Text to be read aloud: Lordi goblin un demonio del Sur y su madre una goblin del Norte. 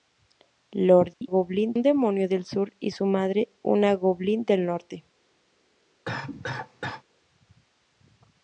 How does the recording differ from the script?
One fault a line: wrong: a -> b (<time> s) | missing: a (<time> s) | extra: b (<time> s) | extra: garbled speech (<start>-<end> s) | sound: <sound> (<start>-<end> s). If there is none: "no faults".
sound: dropout (1.1-1.2 s)
sound: cough (6.1-7.0 s)